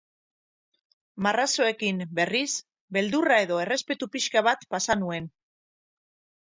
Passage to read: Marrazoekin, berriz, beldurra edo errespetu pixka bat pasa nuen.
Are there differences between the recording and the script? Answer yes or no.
no